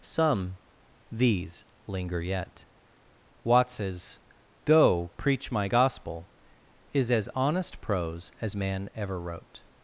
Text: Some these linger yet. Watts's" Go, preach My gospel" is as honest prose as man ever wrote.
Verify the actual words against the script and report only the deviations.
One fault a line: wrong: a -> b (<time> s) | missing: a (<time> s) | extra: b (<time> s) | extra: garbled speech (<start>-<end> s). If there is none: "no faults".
no faults